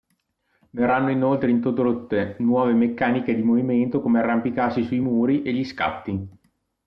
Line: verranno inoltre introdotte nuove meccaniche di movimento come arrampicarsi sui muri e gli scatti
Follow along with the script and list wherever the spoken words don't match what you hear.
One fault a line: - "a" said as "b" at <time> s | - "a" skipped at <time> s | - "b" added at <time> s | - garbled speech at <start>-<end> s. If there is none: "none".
none